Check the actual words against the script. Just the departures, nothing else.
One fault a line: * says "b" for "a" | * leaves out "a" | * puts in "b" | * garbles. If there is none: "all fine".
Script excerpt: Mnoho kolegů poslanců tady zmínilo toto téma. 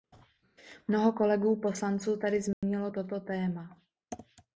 all fine